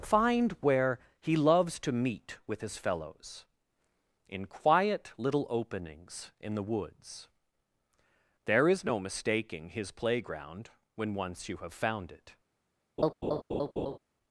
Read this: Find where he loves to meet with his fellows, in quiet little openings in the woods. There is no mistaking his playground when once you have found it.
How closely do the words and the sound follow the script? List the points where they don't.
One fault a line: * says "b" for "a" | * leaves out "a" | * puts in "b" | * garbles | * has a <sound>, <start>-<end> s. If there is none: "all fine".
* has a laugh, 13.0-14.0 s